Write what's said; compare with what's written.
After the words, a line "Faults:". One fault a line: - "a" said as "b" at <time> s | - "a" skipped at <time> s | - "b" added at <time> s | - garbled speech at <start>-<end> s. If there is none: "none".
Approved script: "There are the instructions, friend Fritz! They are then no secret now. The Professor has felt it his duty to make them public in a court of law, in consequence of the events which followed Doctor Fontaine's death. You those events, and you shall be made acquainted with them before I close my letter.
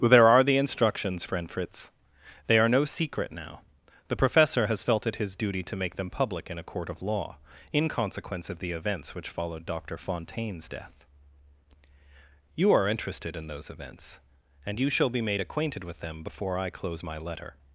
"There are the instructions, friend Fritz! They are no secret now. The Professor has felt it his duty to make them public in a court of law, in consequence of the events which followed Doctor Fontaine's death. You are interested in those events, and you shall be made acquainted with them before I close my letter.
Faults:
- "then" skipped at 2.7 s
- "are interested in" added at 12.7 s